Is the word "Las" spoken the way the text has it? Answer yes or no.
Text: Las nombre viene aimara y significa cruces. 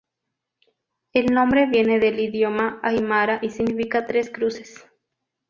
no